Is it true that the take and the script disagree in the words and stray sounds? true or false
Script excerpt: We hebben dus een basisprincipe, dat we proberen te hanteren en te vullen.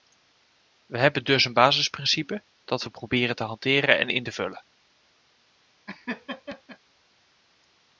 true